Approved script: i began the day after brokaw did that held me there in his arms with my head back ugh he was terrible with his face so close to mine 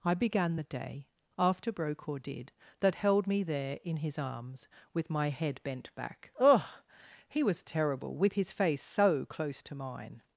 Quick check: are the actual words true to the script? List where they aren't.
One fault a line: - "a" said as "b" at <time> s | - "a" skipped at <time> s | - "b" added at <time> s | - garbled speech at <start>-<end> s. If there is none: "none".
- "bent" added at 5.6 s